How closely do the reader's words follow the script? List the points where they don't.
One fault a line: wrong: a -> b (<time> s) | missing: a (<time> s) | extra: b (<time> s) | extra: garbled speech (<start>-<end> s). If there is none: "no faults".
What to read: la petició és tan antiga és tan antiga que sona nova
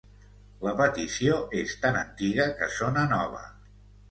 missing: és tan antiga (2.5 s)